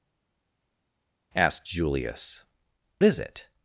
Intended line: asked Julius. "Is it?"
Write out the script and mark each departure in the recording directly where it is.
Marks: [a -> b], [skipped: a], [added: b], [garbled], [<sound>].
asked Julius. "Is it?"